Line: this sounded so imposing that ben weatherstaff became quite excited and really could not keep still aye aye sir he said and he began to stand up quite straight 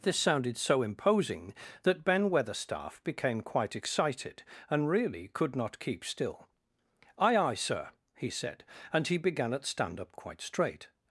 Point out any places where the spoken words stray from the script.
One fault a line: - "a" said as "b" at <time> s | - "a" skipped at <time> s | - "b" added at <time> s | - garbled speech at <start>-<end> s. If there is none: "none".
- "to" said as "at" at 9.5 s